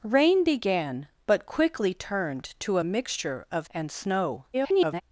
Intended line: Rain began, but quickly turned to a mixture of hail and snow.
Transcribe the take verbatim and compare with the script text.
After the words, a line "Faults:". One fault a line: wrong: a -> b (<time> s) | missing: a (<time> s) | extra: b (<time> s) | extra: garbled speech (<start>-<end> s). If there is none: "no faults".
Rain began, but quickly turned to a mixture of and snow. [garbled]
Faults:
missing: hail (3.7 s)
extra: garbled speech (4.5-5.0 s)